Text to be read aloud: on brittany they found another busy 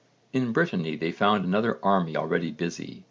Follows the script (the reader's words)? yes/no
no